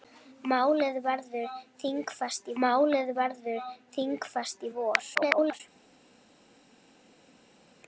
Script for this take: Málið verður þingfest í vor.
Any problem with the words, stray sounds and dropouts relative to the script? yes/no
yes